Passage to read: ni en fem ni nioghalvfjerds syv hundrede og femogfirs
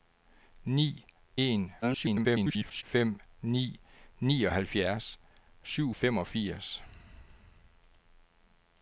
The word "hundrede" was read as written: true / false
false